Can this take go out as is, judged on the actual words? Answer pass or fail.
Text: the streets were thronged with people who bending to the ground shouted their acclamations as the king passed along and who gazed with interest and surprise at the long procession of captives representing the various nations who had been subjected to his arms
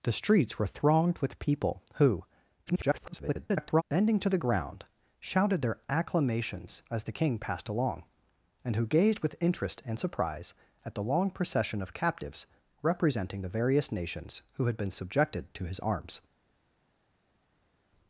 fail